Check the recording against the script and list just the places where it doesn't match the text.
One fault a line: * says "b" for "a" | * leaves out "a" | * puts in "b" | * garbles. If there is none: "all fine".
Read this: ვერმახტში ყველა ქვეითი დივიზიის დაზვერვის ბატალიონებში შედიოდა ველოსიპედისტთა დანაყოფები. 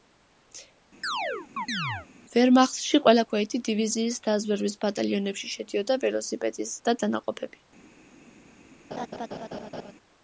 all fine